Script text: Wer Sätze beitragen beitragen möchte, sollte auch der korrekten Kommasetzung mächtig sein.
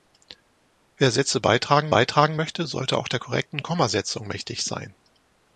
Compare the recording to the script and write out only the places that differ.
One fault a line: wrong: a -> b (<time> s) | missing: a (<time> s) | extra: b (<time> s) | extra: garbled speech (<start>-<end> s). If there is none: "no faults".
no faults